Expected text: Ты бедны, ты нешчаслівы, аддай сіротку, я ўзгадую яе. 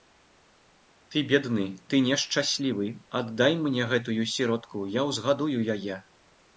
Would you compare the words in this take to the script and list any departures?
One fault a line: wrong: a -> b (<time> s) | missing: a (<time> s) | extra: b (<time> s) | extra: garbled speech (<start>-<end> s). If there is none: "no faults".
extra: мне гэтую (3.7 s)